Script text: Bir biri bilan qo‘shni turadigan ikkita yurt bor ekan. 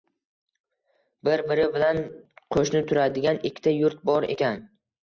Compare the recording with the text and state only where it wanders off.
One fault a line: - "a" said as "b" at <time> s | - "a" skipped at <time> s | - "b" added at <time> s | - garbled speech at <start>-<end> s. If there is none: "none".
none